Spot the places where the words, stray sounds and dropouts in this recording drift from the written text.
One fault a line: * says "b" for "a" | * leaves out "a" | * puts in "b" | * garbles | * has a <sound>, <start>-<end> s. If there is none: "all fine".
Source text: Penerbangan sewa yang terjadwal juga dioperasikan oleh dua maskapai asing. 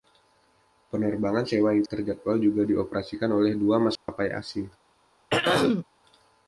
* has a dropout, 4.0-4.1 s
* has a throat clearing, 5.3-5.8 s